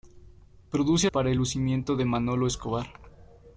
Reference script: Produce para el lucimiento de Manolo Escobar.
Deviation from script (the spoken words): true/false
false